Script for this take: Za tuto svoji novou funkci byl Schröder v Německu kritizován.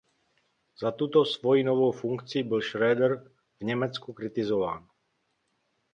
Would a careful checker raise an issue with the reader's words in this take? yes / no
no